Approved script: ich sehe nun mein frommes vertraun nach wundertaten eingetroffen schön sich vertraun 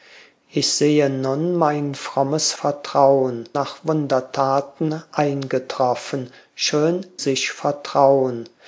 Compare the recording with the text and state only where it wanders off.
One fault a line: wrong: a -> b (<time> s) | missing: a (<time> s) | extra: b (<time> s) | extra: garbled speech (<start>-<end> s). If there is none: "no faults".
no faults